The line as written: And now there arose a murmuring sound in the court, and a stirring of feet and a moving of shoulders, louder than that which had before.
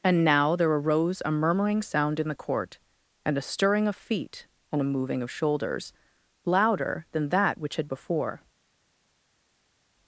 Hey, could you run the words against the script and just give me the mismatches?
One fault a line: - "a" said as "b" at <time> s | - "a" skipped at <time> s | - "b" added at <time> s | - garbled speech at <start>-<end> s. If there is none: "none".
none